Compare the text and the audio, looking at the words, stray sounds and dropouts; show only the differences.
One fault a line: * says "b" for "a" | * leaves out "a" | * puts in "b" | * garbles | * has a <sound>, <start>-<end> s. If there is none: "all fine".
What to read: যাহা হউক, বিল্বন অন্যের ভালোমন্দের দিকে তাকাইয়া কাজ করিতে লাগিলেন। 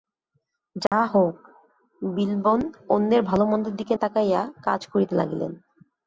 * has a dropout, 0.9-0.9 s